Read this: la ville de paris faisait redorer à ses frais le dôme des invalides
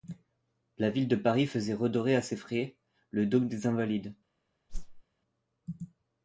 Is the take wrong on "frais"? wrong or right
right